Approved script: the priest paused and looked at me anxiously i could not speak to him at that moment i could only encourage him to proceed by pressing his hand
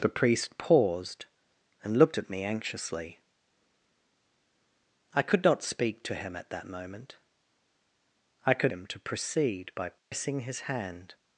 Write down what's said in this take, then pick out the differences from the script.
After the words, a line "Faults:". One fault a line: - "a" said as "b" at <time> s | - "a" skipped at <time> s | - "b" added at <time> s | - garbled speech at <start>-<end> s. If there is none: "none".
the priest paused and looked at me anxiously i could not speak to him at that moment i could him to proceed by pressing his hand
Faults:
- "only encourage" skipped at 8.7 s